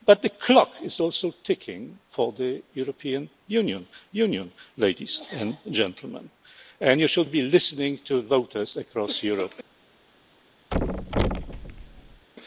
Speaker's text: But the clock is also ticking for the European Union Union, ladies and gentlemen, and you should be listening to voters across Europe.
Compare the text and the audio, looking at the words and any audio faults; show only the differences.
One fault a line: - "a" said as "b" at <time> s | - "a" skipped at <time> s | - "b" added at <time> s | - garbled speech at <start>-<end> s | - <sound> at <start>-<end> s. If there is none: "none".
- thud at 10.7-12.3 s